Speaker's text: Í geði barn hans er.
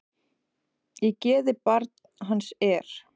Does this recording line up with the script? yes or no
yes